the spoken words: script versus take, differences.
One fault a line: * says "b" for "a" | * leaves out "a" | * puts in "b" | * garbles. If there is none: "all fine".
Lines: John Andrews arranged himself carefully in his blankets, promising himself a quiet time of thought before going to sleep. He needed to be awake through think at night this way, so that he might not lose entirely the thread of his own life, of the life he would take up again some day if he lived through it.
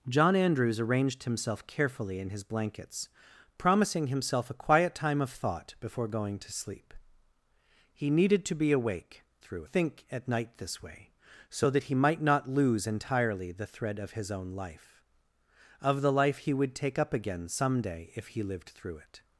all fine